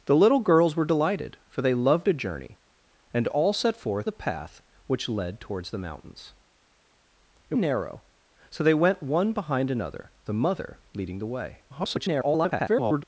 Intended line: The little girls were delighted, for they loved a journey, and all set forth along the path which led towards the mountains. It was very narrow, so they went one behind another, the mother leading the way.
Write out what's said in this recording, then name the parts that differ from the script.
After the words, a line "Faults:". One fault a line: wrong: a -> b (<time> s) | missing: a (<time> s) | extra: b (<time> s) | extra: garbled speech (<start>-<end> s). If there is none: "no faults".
The little girls were delighted, for they loved a journey, and all set forth the path which led towards the mountains. It narrow, so they went one behind another, the mother leading the way. [garbled]
Faults:
missing: along (4.1 s)
missing: was very (7.6 s)
extra: garbled speech (11.7-13.0 s)